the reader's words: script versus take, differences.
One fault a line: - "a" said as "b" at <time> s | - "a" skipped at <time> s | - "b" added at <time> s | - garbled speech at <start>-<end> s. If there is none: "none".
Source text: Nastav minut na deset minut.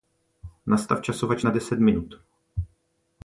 - "minut" said as "časovač" at 1.0 s